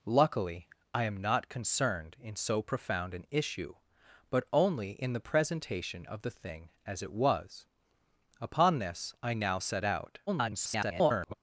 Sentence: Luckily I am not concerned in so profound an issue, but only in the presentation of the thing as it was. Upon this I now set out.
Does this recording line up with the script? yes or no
no